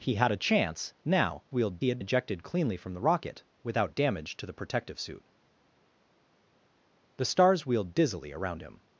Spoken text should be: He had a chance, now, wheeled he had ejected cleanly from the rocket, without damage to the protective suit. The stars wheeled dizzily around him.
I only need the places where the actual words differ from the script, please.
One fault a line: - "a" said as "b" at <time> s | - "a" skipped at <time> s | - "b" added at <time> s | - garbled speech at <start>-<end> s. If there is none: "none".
none